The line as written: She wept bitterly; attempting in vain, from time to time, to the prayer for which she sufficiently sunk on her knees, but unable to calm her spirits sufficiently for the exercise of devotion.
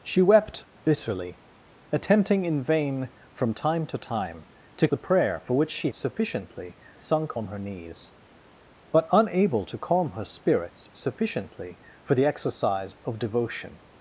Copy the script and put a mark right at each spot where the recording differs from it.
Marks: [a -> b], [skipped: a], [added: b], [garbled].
She wept bitterly; attempting in vain, from time to time, to the prayer for which she sufficiently sunk on her knees, but unable to calm her spirits sufficiently for the exercise of devotion.